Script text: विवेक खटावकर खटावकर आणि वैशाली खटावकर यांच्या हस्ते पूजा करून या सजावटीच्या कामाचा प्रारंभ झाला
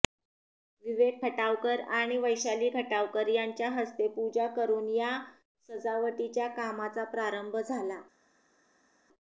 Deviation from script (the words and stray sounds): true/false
true